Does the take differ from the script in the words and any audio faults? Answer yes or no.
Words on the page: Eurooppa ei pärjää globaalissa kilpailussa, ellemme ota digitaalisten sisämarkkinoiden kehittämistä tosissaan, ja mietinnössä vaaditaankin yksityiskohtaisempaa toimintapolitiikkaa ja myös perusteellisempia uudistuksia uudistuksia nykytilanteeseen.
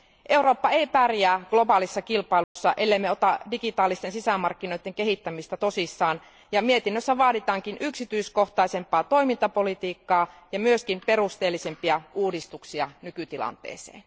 yes